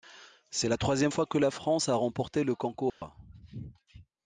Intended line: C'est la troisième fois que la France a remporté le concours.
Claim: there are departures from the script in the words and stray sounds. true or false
true